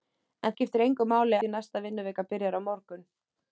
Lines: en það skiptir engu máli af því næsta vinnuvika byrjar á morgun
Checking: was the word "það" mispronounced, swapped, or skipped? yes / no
yes